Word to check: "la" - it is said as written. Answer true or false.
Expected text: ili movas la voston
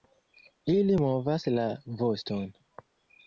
true